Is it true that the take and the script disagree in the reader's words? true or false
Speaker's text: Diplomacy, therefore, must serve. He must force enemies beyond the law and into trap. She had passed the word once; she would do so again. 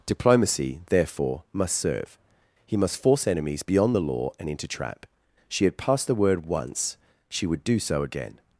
false